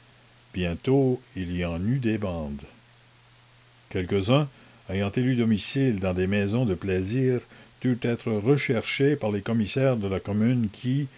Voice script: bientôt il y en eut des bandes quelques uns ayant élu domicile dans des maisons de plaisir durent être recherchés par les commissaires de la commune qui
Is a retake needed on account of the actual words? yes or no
no